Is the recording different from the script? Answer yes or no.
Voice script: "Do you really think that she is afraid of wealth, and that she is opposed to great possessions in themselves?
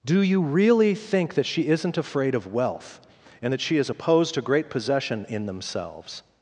yes